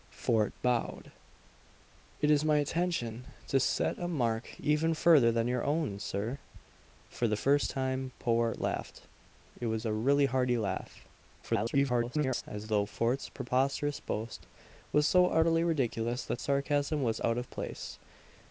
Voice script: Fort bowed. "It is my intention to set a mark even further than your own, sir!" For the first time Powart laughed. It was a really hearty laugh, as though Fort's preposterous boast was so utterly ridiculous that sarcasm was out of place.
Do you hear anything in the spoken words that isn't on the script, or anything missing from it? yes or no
yes